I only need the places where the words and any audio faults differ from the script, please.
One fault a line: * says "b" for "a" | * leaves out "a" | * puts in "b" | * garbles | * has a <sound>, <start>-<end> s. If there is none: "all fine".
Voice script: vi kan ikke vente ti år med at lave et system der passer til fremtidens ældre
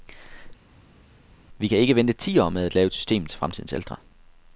* leaves out "der passer"